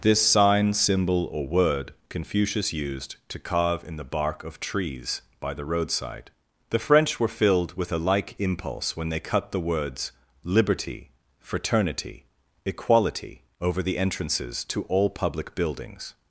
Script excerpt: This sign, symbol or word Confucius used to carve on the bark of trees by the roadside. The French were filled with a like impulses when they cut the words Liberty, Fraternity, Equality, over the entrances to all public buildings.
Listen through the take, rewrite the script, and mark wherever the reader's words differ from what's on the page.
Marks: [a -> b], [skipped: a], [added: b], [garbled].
This sign, symbol or word Confucius used to carve [on -> in] the bark of trees by the roadside. The French were filled with a like [impulses -> impulse] when they cut the words Liberty, Fraternity, Equality, over the entrances to all public buildings.